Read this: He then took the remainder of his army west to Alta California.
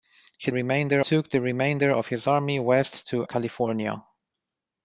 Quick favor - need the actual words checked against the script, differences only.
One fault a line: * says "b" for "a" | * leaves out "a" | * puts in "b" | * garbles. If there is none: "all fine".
* says "remainder" for "then"
* leaves out "Alta"